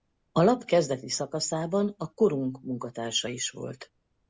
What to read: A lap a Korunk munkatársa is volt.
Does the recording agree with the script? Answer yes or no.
no